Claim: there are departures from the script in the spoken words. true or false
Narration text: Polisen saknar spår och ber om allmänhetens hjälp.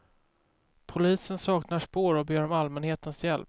false